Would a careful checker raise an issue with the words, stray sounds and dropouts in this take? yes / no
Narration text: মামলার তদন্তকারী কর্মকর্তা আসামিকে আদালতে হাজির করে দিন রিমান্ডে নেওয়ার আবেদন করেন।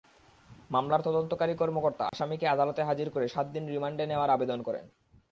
yes